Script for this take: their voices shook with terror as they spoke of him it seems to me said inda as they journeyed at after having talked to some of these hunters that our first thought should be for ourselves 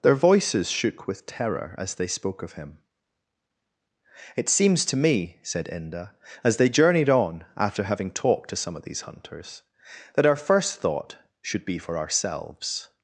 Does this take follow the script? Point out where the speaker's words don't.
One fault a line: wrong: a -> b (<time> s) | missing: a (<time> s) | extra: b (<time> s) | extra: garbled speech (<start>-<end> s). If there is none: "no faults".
wrong: at -> on (7.1 s)